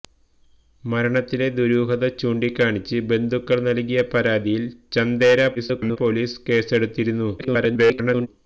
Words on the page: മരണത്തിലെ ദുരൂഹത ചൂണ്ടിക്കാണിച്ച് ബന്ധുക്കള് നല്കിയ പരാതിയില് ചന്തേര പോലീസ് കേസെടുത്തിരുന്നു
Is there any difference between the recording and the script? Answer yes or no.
yes